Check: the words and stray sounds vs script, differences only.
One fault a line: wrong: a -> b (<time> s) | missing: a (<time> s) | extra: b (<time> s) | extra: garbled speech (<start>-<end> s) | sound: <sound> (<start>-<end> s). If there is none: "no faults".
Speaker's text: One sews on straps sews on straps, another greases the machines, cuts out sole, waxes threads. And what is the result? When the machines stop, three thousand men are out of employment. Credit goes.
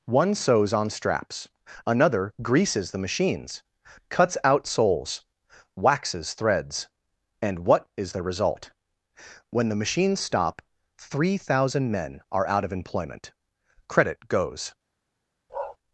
missing: sews on straps (1.5 s)
wrong: sole -> soles (4.7 s)
sound: bark (15.5-15.8 s)